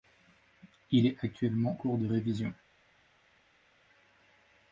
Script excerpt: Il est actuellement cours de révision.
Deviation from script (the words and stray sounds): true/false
false